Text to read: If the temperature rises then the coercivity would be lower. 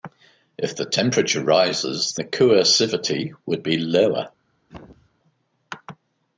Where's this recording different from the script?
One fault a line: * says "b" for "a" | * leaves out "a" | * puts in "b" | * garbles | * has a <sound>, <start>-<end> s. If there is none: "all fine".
* leaves out "then"
* has a throat clearing, 4.7-5.1 s